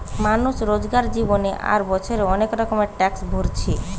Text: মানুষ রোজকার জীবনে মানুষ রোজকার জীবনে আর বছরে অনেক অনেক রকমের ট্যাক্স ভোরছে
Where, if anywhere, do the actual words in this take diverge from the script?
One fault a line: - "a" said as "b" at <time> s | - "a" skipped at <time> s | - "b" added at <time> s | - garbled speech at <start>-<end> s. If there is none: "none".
- "মানুষ রোজকার জীবনে" skipped at 1.5 s
- "অনেক" skipped at 2.5 s